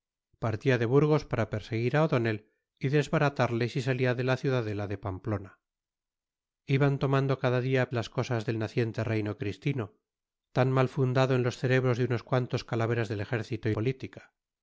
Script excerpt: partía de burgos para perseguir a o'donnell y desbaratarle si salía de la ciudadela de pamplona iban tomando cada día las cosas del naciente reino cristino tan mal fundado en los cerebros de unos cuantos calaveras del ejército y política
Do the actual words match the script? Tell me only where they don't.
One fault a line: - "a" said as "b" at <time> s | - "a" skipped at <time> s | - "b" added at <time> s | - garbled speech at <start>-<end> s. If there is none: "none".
none